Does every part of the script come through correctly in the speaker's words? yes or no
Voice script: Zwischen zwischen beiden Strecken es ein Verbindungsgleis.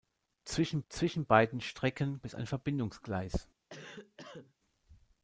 yes